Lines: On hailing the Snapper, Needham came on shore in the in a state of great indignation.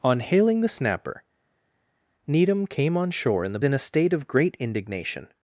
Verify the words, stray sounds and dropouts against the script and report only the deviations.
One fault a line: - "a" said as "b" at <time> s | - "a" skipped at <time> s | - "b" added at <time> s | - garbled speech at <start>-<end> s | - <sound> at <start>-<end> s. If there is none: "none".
none